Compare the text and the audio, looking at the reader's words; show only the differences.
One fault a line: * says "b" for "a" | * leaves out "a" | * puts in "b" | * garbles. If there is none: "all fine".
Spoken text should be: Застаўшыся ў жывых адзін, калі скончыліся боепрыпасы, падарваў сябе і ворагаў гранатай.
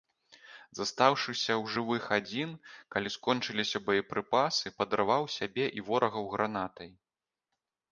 all fine